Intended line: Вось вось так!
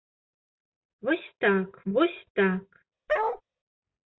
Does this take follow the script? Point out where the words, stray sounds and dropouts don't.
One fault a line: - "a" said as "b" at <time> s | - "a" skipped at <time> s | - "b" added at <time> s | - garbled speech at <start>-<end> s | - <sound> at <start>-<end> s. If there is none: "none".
- "так" added at 1.4 s
- bark at 3.1-3.4 s